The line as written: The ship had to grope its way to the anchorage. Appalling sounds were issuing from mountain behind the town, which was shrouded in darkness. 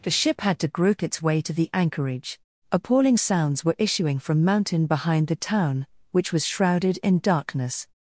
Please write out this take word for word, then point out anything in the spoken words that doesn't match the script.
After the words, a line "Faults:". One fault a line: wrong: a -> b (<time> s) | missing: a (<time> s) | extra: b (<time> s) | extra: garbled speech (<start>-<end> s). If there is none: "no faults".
The ship had to grope its way to the anchorage. Appalling sounds were issuing from mountain behind the town, which was shrouded in darkness.
Faults:
no faults